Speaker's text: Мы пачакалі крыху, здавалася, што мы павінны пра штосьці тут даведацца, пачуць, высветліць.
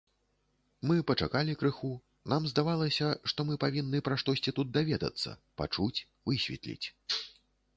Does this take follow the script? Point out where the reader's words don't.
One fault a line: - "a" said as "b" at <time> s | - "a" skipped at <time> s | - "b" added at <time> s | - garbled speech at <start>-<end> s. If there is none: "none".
- "нам" added at 2.3 s